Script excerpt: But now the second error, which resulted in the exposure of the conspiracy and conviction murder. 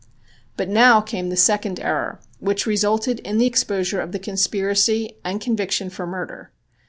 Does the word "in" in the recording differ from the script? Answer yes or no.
no